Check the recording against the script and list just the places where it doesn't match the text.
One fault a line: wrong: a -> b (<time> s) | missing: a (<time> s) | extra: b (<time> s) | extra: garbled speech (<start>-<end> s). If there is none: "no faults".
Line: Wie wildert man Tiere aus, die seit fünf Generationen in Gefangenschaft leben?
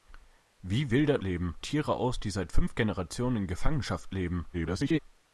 wrong: man -> leben (1.2 s)
extra: garbled speech (4.5-5.0 s)